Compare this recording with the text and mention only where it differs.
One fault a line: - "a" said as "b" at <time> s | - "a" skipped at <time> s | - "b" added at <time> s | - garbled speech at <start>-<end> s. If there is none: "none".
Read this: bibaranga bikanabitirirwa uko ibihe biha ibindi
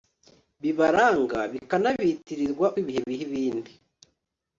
- "uko" skipped at 2.7 s